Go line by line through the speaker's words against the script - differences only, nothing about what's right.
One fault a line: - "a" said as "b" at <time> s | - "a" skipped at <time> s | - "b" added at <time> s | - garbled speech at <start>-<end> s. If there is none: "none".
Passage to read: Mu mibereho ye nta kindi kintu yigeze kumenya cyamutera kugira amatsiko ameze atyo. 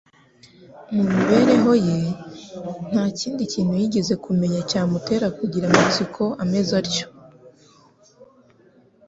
none